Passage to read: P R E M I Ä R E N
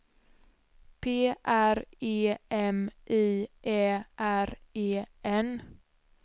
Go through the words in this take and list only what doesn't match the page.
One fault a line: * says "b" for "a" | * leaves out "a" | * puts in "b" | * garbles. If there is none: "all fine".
all fine